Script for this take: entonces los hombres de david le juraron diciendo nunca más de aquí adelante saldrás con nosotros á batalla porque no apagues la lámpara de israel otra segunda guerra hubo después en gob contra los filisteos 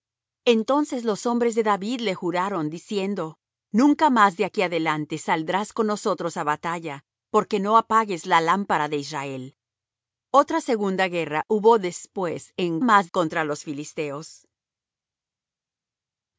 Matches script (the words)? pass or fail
fail